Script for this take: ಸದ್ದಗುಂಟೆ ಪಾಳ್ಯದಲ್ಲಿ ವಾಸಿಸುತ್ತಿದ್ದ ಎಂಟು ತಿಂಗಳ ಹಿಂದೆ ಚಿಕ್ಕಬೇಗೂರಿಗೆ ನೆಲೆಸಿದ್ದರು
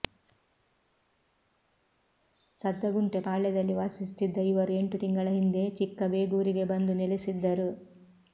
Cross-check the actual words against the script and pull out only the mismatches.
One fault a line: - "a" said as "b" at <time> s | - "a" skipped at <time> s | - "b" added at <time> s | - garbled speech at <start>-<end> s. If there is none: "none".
- "ಇವರು" added at 4.5 s
- "ಬಂದು" added at 6.7 s